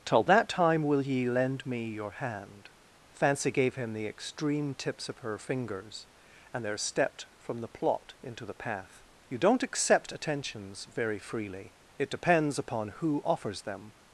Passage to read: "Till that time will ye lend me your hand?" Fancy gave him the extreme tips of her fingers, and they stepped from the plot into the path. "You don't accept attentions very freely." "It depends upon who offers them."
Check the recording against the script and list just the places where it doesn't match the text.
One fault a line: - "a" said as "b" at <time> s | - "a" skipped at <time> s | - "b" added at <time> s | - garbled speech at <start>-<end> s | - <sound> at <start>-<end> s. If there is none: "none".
- "they" said as "there" at 6.6 s